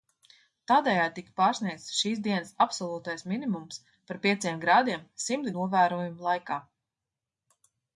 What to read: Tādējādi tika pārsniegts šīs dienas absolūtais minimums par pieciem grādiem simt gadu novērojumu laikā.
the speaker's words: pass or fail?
fail